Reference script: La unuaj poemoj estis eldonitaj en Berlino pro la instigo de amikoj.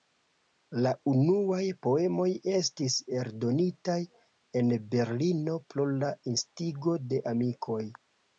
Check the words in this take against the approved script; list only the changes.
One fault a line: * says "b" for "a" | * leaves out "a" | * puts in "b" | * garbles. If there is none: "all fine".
all fine